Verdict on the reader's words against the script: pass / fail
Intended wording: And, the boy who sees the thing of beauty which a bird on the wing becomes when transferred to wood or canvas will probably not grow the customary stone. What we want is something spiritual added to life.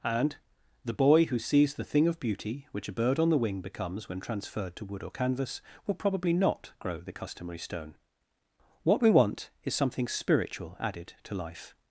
pass